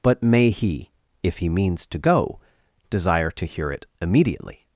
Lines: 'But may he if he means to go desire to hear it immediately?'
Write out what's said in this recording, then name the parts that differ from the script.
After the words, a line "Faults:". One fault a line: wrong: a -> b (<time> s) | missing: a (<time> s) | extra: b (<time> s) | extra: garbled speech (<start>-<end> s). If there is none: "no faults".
'But may he if he means to go desire to hear it immediately?'
Faults:
no faults